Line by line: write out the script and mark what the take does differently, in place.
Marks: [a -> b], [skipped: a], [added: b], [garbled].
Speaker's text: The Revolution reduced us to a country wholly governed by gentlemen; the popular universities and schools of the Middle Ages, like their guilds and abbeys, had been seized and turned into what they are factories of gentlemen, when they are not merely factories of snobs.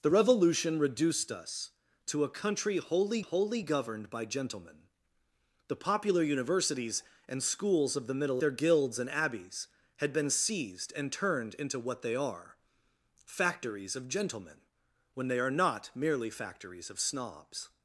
The Revolution reduced us to a country wholly [added: wholly] governed by gentlemen; the popular universities and schools of the Middle [skipped: Ages, like] their guilds and abbeys, had been seized and turned into what they are factories of gentlemen, when they are not merely factories of snobs.